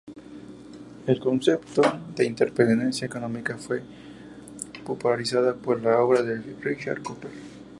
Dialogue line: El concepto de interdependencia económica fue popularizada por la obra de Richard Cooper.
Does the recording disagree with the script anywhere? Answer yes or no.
no